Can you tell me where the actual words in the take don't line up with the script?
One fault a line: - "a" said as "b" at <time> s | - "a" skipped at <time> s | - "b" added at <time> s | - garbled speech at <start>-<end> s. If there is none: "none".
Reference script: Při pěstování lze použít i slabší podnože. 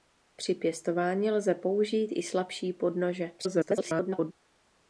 - garbled speech at 3.4-4.3 s